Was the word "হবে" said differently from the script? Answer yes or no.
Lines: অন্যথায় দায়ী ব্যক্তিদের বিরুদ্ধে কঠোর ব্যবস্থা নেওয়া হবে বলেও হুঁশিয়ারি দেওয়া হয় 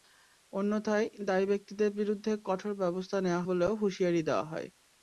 yes